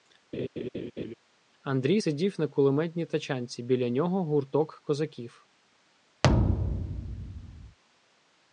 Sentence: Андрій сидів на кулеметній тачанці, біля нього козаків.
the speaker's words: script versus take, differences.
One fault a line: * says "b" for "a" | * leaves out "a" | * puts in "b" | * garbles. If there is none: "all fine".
* puts in "гурток"